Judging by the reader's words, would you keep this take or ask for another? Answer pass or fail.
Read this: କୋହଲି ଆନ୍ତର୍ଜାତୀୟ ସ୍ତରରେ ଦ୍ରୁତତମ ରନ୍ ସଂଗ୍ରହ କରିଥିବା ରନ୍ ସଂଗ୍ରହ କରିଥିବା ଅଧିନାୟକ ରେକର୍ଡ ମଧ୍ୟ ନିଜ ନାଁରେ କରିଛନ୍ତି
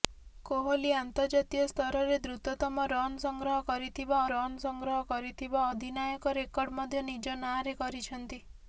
pass